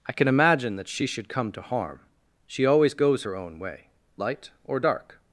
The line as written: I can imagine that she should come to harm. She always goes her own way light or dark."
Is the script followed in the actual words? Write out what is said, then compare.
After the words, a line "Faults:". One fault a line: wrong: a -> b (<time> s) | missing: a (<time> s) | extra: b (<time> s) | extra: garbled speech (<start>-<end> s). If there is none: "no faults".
I can imagine that she should come to harm. She always goes her own way light or dark."
Faults:
no faults